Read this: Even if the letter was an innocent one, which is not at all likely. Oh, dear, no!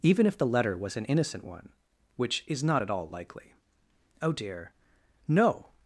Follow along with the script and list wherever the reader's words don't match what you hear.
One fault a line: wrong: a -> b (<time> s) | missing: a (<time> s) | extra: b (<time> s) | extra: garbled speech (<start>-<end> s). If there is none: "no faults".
no faults